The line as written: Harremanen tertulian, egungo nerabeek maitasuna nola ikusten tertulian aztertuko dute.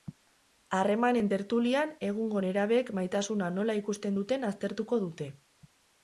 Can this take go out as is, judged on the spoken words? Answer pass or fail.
fail